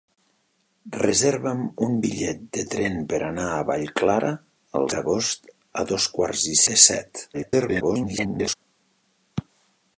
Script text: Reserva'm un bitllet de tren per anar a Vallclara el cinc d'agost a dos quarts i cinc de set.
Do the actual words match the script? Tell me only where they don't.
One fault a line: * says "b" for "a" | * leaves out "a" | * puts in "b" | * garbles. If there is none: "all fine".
* leaves out "cinc"
* leaves out "cinc"
* garbles